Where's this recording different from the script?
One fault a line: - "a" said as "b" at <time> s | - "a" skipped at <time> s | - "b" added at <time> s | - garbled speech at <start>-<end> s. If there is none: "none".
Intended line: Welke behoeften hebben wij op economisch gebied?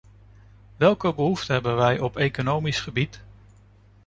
none